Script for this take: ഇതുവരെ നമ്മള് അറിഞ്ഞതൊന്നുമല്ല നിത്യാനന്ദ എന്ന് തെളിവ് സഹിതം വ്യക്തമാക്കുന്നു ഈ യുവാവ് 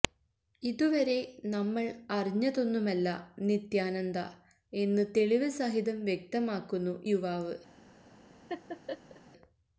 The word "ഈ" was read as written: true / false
false